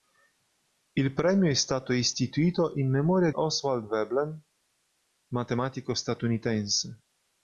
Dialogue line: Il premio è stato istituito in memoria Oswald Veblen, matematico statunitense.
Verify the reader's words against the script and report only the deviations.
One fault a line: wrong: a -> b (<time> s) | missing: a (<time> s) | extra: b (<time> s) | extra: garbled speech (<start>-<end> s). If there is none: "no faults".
no faults